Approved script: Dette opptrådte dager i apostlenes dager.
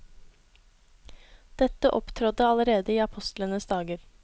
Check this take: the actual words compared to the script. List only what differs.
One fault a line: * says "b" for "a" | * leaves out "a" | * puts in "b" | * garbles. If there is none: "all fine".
* says "allerede" for "dager"